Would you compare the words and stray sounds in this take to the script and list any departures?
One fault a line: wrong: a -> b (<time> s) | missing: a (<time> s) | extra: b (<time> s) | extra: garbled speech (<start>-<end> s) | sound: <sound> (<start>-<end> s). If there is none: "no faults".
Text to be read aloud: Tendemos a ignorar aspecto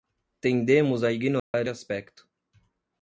sound: dropout (1.4-1.5 s)